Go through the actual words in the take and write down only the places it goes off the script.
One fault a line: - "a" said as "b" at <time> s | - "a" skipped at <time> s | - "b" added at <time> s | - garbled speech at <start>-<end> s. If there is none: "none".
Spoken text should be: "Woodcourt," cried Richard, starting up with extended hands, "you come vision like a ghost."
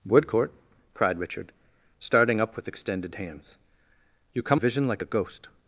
none